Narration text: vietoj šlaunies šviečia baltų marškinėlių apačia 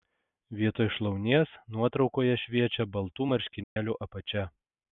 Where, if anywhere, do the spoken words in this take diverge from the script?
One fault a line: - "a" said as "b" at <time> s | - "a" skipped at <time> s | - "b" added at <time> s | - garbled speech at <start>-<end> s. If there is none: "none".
- "nuotraukoje" added at 1.8 s